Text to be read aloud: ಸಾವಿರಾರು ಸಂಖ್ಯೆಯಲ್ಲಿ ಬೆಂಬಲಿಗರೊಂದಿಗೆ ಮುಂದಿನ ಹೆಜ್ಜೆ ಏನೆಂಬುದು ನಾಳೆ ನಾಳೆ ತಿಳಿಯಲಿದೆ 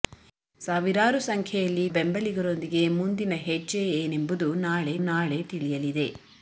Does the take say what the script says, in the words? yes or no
yes